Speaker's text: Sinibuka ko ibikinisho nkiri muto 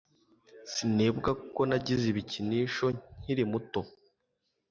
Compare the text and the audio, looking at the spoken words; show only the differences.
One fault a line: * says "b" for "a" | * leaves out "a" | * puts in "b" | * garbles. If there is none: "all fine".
* puts in "nagize"